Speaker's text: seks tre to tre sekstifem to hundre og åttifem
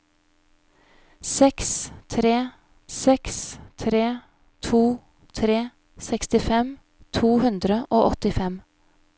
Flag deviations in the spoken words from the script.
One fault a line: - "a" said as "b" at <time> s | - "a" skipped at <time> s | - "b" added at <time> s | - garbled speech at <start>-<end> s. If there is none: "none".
- "seks tre" added at 3.0 s